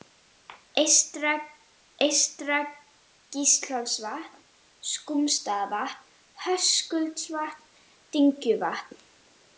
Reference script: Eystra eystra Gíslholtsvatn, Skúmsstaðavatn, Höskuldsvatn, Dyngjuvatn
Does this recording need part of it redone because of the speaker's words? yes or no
no